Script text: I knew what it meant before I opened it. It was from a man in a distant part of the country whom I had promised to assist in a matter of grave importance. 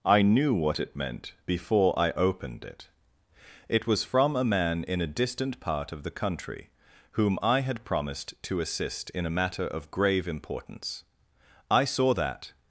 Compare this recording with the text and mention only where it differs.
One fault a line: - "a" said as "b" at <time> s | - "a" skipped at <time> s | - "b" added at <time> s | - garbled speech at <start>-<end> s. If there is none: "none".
- "I saw that" added at 11.7 s